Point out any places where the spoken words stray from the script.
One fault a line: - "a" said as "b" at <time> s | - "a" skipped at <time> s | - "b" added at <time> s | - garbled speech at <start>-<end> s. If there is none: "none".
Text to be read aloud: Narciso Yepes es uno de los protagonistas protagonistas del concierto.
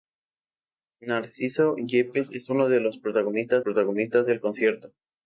none